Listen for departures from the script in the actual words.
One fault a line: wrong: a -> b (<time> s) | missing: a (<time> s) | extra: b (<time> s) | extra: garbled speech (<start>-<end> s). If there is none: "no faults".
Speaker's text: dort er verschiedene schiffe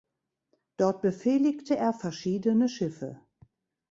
extra: befehligte (1.0 s)